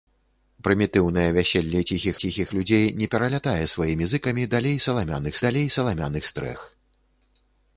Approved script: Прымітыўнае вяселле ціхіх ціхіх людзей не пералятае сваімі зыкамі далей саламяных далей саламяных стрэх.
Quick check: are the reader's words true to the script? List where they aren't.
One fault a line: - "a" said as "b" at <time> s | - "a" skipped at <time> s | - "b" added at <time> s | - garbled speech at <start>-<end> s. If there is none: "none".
none